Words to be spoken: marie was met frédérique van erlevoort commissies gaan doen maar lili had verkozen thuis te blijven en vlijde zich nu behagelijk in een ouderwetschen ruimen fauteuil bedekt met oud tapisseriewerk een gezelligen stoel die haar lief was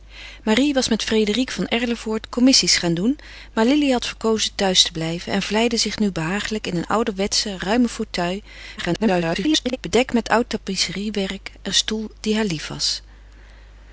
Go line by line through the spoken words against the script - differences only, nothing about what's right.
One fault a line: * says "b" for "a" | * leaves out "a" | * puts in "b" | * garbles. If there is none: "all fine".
* garbles
* leaves out "gezelligen"